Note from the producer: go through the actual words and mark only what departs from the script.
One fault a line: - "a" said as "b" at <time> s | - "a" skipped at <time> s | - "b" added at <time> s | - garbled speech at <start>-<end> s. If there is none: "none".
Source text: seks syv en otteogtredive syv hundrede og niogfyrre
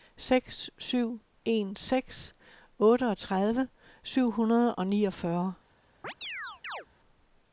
- "seks" added at 1.7 s